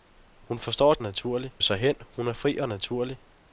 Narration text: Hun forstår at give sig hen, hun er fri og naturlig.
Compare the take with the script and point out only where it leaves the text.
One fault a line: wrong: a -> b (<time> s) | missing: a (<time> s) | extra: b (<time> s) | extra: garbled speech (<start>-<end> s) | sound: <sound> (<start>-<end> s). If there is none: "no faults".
wrong: give -> naturlig (1.0 s)